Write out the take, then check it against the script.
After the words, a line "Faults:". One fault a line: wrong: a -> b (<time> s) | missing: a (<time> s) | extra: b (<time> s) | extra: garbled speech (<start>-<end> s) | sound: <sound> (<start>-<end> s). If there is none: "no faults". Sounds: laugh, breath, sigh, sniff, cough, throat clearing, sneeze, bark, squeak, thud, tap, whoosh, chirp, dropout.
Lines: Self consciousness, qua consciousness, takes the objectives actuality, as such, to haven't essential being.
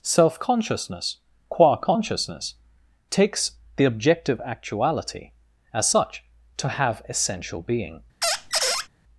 Self consciousness, qua consciousness, takes the objective actuality, as such, to have essential being.
Faults:
wrong: objectives -> objective (3.9 s)
wrong: haven't -> have (6.7 s)
sound: squeak (8.2-8.9 s)